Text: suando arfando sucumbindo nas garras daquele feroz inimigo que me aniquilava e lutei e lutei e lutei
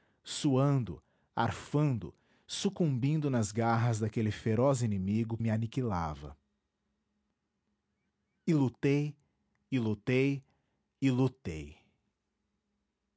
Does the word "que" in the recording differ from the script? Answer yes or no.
yes